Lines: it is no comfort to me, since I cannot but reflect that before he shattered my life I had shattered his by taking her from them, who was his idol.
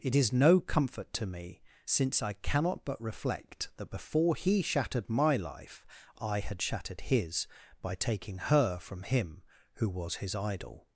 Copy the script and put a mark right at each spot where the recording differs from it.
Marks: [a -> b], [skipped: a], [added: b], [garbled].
it is no comfort to me, since I cannot but reflect that before he shattered my life I had shattered his by taking her from [them, -> him] who was his idol.